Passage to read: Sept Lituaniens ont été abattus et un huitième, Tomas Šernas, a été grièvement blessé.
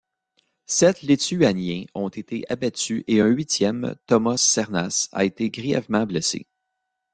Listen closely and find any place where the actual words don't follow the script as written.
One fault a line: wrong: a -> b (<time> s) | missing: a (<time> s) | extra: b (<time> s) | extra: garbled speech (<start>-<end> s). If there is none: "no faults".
no faults